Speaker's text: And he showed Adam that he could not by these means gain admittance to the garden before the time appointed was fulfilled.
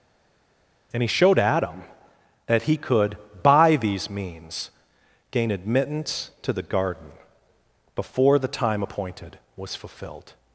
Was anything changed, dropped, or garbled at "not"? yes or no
yes